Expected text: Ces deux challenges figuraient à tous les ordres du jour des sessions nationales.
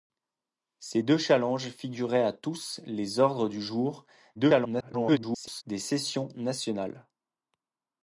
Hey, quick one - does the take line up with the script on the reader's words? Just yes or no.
no